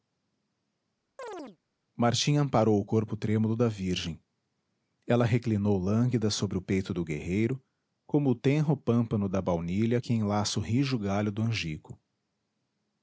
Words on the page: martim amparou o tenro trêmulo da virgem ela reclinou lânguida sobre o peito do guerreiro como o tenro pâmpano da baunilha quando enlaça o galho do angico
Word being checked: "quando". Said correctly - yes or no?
no